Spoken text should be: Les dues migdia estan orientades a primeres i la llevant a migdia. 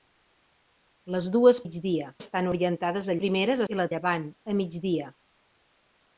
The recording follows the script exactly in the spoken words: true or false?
true